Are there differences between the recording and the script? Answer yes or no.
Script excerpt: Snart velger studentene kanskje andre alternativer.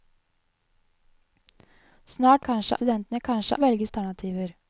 yes